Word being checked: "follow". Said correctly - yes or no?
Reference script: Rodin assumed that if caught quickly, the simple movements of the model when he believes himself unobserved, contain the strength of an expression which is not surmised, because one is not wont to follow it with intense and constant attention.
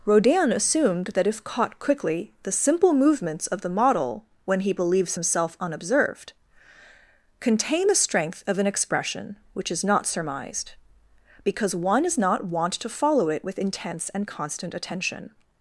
yes